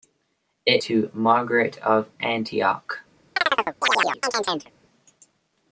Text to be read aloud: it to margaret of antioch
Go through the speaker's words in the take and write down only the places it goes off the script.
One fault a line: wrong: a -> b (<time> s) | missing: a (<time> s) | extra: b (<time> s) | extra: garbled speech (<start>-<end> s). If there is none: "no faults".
no faults